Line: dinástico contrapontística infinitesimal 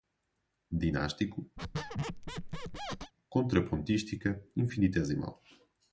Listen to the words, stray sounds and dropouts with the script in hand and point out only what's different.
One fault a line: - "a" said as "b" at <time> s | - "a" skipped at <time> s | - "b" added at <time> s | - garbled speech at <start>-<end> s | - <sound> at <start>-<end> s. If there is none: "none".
- squeak at 1.6-3.1 s